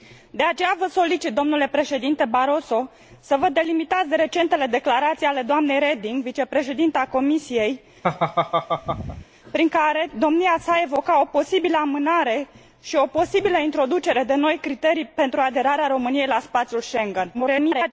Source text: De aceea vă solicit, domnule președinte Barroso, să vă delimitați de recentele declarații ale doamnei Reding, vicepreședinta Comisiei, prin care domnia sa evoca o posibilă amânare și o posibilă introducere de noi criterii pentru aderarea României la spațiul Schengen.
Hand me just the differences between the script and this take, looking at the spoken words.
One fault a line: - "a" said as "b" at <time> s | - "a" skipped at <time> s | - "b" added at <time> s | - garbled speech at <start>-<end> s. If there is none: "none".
- garbled speech at 17.3-17.9 s